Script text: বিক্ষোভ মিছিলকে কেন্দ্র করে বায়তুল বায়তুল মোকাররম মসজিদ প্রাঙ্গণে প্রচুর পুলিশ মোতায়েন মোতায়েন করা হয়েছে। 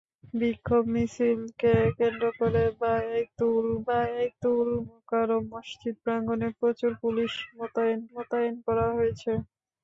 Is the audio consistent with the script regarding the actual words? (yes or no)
yes